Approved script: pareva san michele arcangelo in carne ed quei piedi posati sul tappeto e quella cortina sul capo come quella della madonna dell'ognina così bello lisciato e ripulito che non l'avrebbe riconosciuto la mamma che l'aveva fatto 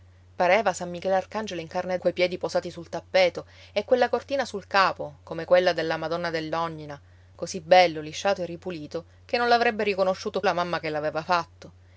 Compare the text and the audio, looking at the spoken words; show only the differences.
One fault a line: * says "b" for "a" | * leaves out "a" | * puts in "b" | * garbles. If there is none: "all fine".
all fine